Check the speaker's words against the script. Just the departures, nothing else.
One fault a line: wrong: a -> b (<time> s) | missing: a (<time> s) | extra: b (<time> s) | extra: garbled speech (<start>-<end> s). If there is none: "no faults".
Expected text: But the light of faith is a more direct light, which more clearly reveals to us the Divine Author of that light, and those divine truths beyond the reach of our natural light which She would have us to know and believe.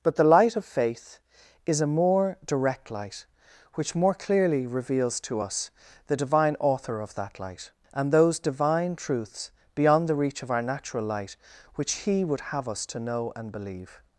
wrong: She -> He (12.1 s)